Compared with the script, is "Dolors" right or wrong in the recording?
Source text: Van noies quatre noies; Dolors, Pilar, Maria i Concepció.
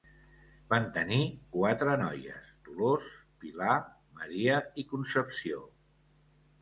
right